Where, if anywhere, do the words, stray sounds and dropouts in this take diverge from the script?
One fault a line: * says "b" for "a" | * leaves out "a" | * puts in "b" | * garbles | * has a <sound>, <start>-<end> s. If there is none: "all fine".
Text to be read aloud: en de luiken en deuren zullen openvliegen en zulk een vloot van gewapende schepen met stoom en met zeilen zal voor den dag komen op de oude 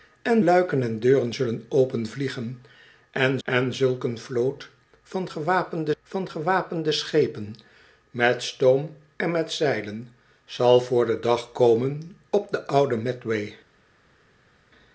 * leaves out "de"
* puts in "en"
* puts in "van gewapende"